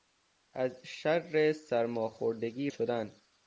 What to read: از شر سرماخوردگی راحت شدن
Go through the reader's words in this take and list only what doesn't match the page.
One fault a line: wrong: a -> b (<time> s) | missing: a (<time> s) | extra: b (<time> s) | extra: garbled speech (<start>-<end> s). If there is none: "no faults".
missing: راحت (2.7 s)